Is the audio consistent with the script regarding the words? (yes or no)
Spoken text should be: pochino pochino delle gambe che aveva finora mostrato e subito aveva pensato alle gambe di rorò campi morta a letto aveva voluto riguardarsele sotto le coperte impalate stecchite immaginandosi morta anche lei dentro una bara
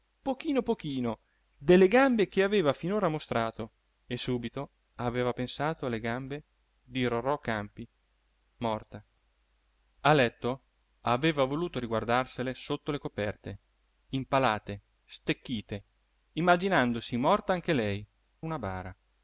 no